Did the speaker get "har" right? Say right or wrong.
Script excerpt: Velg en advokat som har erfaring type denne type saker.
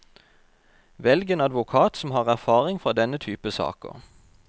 right